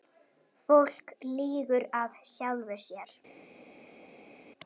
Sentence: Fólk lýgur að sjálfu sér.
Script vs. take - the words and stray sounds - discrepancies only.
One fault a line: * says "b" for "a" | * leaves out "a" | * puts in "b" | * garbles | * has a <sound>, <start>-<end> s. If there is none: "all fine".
all fine